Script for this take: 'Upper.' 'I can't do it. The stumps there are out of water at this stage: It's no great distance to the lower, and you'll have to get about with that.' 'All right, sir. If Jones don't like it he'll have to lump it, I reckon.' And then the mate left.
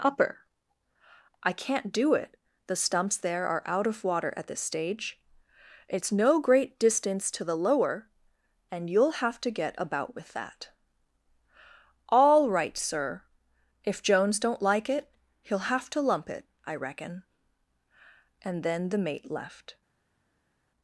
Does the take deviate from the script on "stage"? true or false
false